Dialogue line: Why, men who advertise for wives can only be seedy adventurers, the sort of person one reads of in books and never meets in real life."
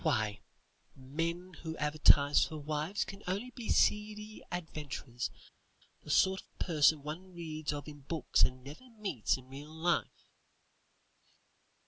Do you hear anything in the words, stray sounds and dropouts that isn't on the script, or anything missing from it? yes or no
no